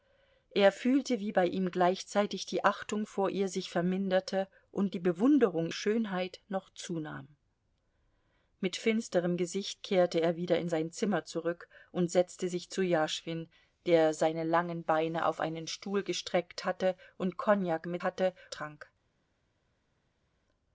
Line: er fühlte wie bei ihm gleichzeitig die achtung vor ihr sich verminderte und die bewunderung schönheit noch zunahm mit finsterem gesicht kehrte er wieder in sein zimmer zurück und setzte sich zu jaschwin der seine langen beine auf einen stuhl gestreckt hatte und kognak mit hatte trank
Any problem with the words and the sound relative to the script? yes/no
no